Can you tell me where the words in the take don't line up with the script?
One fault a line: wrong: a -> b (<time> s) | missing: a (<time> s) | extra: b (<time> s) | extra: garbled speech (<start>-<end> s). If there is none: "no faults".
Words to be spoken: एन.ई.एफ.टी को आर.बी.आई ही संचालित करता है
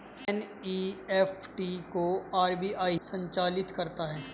missing: ही (3.0 s)